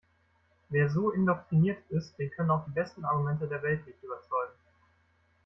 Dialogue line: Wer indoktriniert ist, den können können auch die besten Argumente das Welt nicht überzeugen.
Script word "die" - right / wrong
right